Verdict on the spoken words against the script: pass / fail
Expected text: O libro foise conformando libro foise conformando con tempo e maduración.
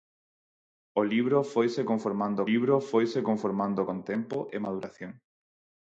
pass